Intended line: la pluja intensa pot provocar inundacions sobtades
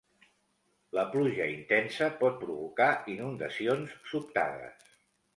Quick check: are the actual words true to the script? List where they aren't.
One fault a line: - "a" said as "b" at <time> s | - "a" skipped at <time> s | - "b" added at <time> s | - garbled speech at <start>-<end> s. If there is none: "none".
none